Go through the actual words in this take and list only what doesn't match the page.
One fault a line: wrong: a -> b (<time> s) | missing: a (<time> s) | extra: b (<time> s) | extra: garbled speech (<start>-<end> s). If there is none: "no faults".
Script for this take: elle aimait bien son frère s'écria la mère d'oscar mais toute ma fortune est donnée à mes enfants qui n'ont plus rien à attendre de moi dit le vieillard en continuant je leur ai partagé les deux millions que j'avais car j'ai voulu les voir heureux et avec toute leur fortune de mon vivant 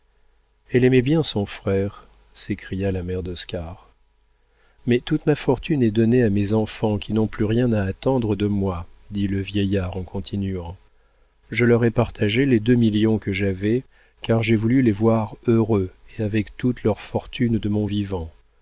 no faults